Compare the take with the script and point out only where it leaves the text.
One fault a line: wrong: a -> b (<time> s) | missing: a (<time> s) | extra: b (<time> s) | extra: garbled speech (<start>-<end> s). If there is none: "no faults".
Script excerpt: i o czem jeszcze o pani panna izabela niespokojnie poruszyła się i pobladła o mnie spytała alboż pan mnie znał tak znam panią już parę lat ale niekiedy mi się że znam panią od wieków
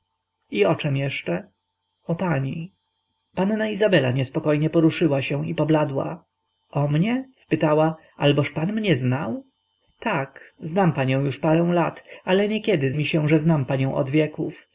no faults